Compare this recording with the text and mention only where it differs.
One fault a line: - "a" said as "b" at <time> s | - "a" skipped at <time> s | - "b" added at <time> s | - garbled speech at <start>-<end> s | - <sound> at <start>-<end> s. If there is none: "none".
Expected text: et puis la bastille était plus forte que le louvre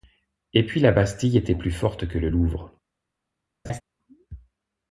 - laugh at 3.6-3.8 s